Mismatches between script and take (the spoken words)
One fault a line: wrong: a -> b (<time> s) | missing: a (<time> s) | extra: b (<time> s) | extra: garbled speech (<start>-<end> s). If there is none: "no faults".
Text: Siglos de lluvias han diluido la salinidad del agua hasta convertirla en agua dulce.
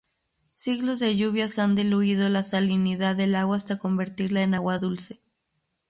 no faults